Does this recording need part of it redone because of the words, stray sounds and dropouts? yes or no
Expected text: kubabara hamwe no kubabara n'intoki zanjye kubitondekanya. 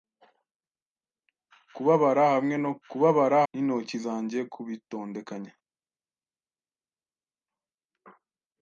no